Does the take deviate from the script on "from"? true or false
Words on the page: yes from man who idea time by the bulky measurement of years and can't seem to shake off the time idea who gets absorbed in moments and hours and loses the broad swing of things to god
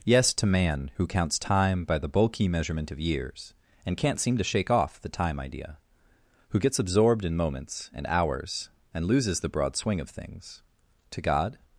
true